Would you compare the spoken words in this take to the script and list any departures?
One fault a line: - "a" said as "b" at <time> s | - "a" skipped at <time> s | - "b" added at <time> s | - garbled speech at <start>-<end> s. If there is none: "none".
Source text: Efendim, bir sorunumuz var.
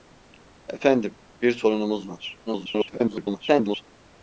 - garbled speech at 2.5-3.8 s